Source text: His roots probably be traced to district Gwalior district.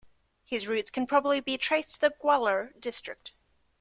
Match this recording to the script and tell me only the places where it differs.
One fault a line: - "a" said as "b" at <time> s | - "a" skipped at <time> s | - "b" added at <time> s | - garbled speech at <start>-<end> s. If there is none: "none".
- "can" added at 0.9 s
- "district" said as "the" at 2.0 s